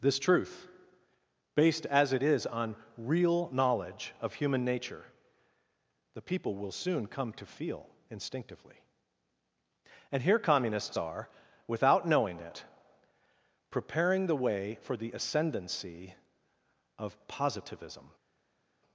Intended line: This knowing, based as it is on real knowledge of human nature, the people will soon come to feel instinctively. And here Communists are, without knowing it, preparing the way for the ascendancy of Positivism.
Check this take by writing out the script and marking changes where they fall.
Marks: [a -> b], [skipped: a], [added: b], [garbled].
This [knowing, -> truth] based as it is on real knowledge of human nature, the people will soon come to feel instinctively. And here Communists are, without knowing it, preparing the way for the ascendancy of Positivism.